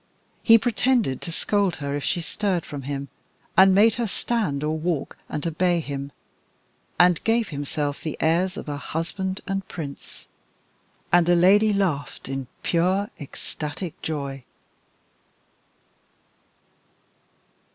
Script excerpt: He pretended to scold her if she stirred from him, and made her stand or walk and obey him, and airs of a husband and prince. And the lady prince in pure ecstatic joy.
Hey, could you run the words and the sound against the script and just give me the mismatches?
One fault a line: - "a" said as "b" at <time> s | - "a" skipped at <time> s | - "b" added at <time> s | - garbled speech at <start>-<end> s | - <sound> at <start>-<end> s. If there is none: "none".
- "gave himself the" added at 7.2 s
- "prince" said as "laughed" at 11.7 s